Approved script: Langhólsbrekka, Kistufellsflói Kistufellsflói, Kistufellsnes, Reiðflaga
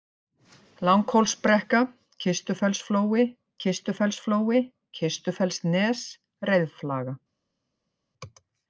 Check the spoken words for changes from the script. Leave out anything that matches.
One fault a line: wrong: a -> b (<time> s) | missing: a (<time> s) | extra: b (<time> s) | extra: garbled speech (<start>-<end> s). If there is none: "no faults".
no faults